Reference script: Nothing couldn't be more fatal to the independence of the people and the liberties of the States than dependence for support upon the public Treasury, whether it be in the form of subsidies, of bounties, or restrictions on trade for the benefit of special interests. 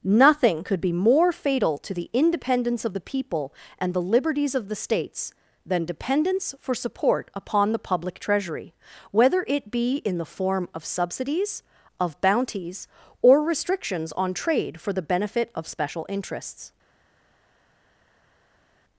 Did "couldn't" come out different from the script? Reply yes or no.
yes